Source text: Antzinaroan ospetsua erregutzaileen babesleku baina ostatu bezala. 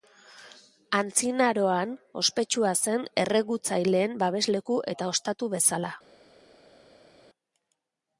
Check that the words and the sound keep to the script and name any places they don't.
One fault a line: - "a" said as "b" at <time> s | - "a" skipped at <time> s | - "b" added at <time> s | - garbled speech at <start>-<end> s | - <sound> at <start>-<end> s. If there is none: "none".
- "zen" added at 2.9 s
- "baina" said as "eta" at 5.0 s